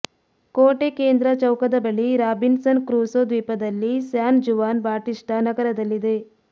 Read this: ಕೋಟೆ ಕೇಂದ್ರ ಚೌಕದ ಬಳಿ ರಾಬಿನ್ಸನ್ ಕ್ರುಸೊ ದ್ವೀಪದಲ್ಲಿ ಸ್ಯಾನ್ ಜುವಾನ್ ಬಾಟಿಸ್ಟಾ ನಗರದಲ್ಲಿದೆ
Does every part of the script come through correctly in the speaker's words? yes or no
yes